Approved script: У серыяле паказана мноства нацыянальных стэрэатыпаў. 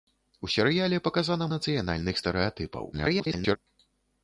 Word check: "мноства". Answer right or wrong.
wrong